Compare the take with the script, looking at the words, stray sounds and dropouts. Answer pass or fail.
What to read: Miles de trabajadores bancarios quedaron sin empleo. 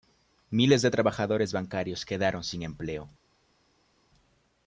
pass